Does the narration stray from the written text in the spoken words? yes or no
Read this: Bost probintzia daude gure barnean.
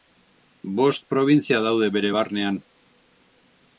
yes